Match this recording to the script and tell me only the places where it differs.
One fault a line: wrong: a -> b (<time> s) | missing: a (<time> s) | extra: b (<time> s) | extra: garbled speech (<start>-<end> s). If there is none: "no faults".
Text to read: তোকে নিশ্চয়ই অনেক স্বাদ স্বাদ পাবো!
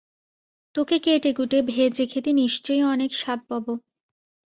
extra: কেটেকুটে ভেজে খেতে (1.0 s)
missing: স্বাদ (3.4 s)